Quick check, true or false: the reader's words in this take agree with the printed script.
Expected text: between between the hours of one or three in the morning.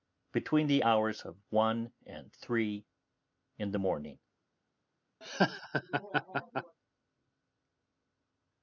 false